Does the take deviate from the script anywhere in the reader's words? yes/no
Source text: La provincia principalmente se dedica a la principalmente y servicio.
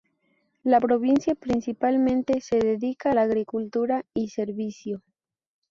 yes